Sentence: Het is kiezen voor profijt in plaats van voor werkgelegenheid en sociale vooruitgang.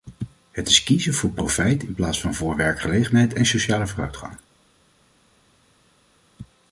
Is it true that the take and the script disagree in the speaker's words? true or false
false